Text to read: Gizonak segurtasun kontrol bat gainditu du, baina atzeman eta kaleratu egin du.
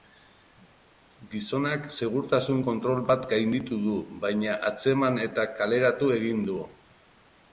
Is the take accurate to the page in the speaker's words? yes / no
yes